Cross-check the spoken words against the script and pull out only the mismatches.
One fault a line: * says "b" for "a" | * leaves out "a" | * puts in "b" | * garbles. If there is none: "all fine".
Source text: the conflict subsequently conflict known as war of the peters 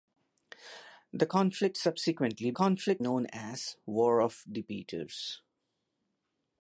all fine